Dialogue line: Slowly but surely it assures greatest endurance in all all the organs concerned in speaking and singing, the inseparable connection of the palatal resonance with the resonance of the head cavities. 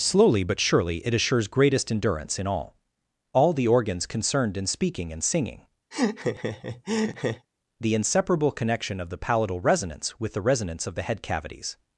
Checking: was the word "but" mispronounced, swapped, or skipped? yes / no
no